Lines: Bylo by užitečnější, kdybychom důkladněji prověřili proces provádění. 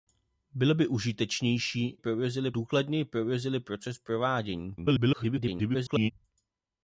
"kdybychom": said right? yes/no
no